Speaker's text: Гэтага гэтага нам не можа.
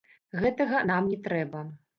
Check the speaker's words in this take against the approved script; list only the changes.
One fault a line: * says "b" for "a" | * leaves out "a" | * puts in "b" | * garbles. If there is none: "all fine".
* leaves out "гэтага"
* says "трэба" for "можа"